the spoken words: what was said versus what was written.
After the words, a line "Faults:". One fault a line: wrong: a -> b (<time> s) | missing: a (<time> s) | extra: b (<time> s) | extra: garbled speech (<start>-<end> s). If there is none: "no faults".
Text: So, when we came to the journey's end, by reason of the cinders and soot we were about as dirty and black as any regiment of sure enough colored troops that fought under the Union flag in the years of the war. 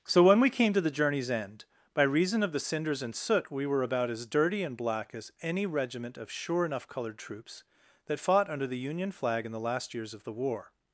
So, when we came to the journey's end, by reason of the cinders and soot we were about as dirty and black as any regiment of sure enough colored troops that fought under the Union flag in the last years of the war.
Faults:
extra: last (9.6 s)